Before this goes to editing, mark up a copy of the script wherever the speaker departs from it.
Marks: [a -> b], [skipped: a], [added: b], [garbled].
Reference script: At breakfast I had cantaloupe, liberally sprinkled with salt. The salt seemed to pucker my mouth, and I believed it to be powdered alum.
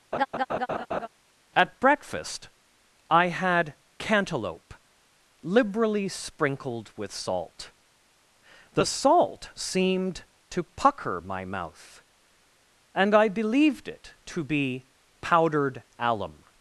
At breakfast I had cantaloupe, liberally sprinkled with salt. The salt seemed to pucker my mouth, and I believed it to be powdered alum.